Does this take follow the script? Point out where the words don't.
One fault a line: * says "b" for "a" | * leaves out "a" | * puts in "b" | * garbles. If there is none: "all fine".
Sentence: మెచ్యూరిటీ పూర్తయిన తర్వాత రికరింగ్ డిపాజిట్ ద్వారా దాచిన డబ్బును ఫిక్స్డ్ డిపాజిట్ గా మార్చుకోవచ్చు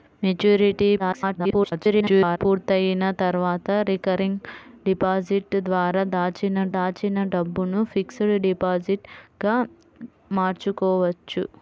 * garbles
* puts in "దాచిన"